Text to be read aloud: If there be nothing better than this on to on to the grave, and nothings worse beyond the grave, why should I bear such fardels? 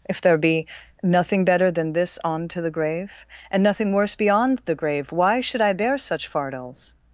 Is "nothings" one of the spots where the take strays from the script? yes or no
yes